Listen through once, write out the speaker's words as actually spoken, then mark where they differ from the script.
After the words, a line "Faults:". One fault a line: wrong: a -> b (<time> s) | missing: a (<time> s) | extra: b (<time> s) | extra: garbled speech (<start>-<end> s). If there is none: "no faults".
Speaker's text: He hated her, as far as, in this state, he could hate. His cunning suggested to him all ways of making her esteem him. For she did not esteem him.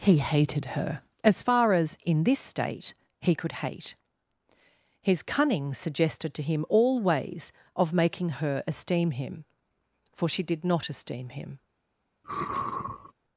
He hated her, as far as, in this state, he could hate. His cunning suggested to him all ways of making her esteem him. For she did not esteem him.
Faults:
no faults